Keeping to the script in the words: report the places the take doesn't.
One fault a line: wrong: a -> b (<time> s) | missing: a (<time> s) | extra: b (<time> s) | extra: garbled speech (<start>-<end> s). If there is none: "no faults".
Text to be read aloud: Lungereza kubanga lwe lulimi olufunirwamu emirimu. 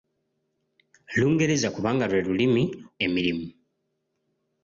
missing: olufunirwamu (2.6 s)